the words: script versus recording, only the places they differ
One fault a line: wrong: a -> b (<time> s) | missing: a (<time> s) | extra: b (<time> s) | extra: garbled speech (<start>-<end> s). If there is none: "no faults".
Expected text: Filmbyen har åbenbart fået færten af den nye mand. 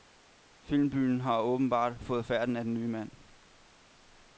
no faults